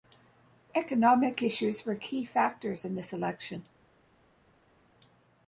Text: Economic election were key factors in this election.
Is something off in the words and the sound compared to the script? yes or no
yes